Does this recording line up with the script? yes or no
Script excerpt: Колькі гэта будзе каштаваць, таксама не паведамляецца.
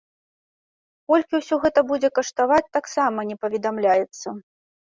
no